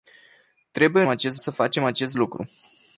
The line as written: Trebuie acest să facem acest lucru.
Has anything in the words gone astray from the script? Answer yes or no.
no